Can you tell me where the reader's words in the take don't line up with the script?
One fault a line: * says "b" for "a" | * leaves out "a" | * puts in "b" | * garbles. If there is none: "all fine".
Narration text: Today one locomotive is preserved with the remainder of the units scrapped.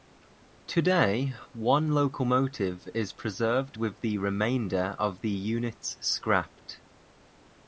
all fine